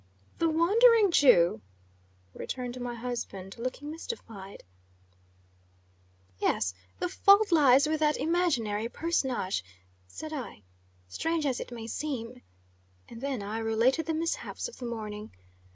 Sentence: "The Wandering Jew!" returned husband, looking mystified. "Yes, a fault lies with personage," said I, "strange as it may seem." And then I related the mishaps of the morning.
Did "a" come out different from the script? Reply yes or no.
yes